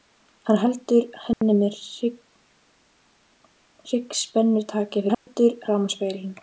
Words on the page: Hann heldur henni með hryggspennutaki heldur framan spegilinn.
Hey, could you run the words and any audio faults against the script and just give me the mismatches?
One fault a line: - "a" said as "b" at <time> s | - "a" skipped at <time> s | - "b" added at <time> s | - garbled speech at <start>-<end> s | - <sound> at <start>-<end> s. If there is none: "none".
- dropout at 1.3-1.4 s
- dropout at 5.1-5.3 s